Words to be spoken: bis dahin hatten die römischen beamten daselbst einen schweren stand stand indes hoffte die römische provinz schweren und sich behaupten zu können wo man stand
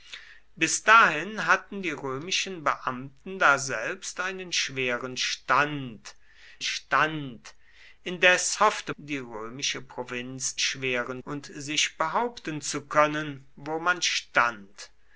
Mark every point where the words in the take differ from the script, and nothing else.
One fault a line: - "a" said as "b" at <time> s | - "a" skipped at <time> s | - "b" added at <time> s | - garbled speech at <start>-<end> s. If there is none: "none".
none